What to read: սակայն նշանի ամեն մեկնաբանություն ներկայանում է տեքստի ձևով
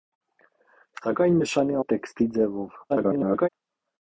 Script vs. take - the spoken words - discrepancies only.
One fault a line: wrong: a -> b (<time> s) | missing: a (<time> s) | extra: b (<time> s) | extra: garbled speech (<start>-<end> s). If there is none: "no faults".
missing: ամեն մեկնաբանություն ներկայանում (1.8 s)
extra: garbled speech (2.9-3.5 s)